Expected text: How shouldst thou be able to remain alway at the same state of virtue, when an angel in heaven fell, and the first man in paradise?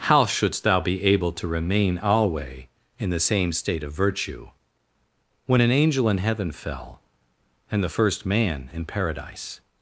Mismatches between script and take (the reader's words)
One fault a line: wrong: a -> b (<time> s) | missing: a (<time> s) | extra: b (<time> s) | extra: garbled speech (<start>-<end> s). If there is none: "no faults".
wrong: at -> in (3.0 s)